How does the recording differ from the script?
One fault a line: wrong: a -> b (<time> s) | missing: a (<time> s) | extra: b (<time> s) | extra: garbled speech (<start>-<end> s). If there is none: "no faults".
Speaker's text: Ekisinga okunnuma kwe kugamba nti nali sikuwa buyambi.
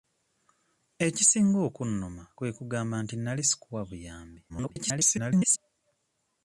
extra: garbled speech (4.5-5.6 s)